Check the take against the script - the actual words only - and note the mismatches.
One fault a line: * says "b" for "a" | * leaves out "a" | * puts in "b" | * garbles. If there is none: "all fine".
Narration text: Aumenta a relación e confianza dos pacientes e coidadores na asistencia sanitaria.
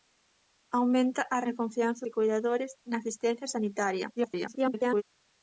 * leaves out "relación"
* leaves out "dos pacientes"
* garbles